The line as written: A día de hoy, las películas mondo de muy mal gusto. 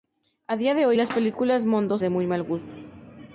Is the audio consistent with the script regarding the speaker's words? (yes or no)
yes